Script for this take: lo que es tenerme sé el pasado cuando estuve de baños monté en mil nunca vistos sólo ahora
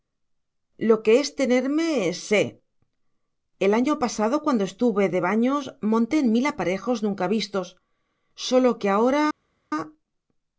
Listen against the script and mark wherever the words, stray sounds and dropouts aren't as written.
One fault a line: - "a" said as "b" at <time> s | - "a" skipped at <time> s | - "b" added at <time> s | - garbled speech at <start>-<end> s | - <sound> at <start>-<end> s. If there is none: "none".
- "año" added at 3.8 s
- "aparejos" added at 6.5 s
- "que" added at 8.8 s